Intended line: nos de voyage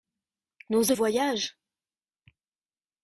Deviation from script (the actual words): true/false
false